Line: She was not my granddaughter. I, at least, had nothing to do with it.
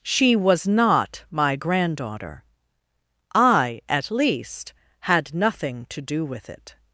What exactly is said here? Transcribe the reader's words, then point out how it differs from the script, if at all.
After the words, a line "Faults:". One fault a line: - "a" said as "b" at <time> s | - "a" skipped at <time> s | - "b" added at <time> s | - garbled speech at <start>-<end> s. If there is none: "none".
She was not my granddaughter. I, at least, had nothing to do with it.
Faults:
none